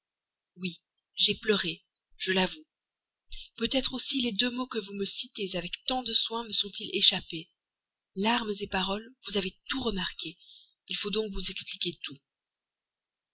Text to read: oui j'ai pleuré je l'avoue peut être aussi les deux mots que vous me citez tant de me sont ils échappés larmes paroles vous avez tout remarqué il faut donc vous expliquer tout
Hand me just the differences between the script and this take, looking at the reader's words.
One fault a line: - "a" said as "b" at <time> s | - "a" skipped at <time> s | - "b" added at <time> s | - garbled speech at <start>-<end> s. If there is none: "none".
- "avec" added at 5.6 s
- "soin" added at 6.1 s